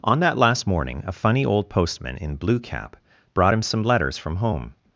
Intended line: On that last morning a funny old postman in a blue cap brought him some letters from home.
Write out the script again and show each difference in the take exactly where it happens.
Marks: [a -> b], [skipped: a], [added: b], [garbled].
On that last morning a funny old postman in [skipped: a] blue cap brought him some letters from home.